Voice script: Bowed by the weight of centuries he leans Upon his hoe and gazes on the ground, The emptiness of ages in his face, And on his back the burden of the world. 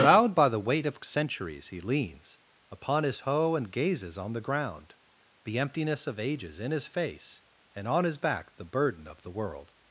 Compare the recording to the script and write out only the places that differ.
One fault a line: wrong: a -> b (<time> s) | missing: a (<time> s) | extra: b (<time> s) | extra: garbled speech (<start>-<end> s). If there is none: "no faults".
no faults